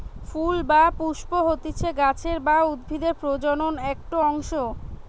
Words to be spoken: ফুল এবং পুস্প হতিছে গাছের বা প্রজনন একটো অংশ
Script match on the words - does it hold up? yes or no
no